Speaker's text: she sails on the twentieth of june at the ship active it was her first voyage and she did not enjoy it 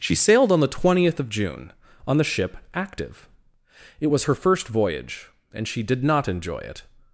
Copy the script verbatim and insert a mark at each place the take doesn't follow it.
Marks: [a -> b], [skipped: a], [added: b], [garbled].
she [sails -> sailed] on the twentieth of june [at -> on] the ship active it was her first voyage and she did not enjoy it